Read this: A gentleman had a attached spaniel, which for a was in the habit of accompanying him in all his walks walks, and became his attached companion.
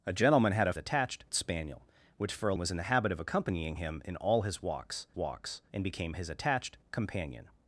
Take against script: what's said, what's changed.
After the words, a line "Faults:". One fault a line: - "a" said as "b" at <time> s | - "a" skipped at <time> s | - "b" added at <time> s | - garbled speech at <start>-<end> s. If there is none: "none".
A gentleman had a attached spaniel, which for a was in the habit of accompanying him in all his walks walks, and became his attached companion.
Faults:
none